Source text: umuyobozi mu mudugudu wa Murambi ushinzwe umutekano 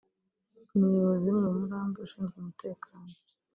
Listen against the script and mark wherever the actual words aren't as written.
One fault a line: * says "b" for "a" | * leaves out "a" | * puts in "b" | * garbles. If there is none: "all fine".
* leaves out "mudugudu"